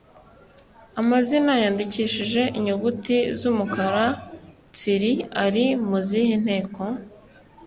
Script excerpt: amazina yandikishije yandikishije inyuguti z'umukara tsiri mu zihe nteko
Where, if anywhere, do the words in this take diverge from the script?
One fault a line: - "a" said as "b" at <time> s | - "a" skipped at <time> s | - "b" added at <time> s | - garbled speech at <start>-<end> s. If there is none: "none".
- "yandikishije" skipped at 2.4 s
- "ari" added at 5.5 s